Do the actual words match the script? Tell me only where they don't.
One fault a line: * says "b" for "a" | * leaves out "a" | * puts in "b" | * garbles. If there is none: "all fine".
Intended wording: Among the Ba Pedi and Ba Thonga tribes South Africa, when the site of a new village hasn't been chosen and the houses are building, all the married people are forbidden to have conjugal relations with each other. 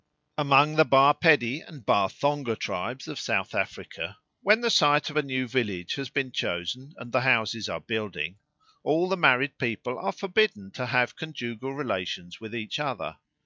* puts in "of"
* says "has" for "hasn't"